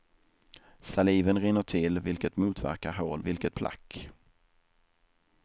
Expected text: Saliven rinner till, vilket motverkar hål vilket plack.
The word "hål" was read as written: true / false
true